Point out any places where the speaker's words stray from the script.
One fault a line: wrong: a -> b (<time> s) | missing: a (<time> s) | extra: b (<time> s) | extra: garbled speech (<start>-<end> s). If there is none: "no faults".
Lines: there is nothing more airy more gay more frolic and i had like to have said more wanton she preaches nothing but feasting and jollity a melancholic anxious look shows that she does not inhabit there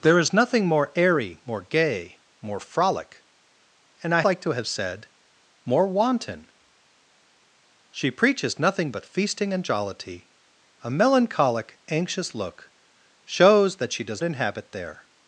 missing: had (4.2 s)
missing: not (14.2 s)